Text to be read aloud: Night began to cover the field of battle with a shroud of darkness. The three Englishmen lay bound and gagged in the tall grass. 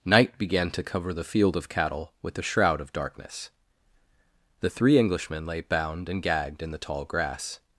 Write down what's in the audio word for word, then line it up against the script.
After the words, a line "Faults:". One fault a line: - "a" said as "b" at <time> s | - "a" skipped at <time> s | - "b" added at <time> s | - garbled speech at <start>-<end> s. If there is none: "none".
Night began to cover the field of cattle with a shroud of darkness. The three Englishmen lay bound and gagged in the tall grass.
Faults:
- "battle" said as "cattle" at 1.7 s